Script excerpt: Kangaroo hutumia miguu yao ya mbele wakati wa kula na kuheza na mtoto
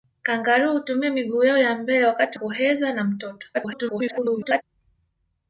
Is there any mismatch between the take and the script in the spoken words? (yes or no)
yes